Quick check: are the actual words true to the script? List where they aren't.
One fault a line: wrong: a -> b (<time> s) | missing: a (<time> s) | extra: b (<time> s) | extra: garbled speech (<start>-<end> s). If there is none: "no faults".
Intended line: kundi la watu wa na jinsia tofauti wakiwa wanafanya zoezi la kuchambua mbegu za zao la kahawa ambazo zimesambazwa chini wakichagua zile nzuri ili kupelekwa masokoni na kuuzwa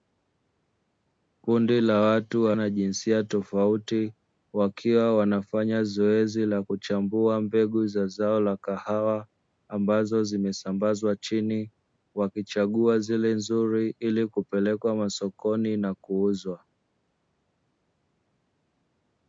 no faults